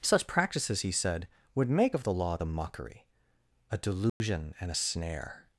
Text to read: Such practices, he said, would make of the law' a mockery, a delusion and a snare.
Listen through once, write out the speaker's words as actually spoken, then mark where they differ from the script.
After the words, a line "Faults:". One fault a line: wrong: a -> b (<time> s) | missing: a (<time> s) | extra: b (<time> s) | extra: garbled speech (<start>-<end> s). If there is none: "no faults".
Such practices, he said, would make of the law' the mockery, a delusion and a snare.
Faults:
wrong: a -> the (2.3 s)